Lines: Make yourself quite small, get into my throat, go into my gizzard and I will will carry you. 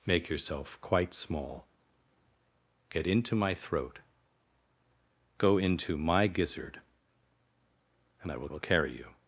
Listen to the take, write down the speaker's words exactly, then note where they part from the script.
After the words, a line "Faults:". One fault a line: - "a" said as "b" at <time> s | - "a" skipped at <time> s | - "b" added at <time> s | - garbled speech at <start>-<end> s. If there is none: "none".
Make yourself quite small, get into my throat, go into my gizzard and I will will carry you.
Faults:
none